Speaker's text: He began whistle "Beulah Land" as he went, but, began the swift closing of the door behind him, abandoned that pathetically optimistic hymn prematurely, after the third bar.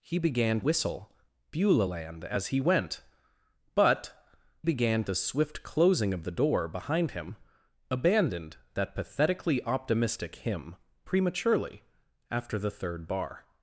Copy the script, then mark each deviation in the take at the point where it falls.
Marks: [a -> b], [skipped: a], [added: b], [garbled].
He began whistle "Beulah Land" as he went, but, began the swift closing of the door behind him, abandoned that pathetically optimistic hymn prematurely, after the third bar.